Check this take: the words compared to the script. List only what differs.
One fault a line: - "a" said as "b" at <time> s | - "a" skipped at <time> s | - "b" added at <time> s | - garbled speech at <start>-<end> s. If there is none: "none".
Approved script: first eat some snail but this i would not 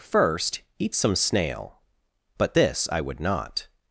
none